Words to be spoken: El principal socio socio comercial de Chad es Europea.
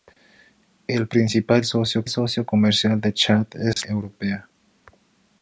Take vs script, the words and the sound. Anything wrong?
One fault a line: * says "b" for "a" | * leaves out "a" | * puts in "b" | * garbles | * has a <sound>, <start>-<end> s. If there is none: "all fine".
* has a dropout, 3.7-3.8 s